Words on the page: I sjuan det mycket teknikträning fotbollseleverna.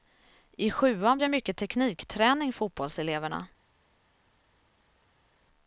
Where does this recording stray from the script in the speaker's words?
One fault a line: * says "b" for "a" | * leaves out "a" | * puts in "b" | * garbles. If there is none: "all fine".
all fine